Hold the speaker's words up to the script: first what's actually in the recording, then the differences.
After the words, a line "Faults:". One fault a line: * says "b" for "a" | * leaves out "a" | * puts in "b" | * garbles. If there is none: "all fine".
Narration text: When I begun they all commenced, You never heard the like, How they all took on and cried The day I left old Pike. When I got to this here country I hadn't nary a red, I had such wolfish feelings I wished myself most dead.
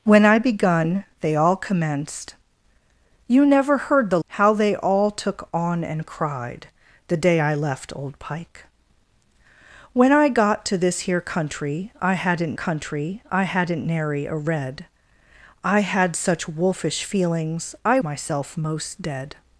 When I begun they all commenced, You never heard the How they all took on and cried The day I left old Pike. When I got to this here country I hadn't country I hadn't nary a red, I had such wolfish feelings I myself most dead.
Faults:
* leaves out "like"
* puts in "country I hadn't"
* leaves out "wished"